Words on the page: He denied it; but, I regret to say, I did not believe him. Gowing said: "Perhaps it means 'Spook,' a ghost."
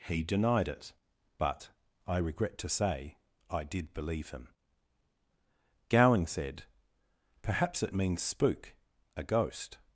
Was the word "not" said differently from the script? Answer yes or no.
yes